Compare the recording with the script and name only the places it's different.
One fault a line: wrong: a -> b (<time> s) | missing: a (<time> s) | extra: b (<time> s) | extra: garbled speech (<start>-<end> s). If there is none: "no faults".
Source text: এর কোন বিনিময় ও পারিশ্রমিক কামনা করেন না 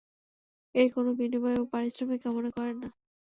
no faults